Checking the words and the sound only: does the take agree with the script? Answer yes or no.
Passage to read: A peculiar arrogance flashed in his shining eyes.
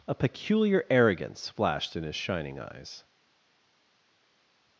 yes